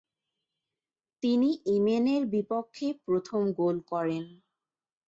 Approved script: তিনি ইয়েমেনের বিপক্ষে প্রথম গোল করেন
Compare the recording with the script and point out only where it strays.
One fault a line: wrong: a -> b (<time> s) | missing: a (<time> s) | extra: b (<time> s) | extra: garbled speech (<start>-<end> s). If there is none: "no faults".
no faults